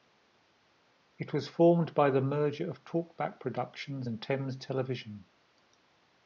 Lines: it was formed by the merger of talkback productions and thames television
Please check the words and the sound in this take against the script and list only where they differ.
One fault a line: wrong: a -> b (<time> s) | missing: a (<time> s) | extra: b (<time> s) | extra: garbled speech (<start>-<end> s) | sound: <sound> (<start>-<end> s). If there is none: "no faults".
no faults